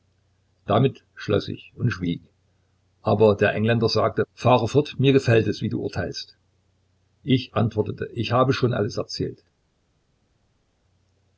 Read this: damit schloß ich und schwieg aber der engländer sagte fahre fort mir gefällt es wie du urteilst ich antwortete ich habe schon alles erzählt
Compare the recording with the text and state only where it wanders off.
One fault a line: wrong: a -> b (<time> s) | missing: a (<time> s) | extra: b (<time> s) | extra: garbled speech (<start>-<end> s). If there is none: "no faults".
no faults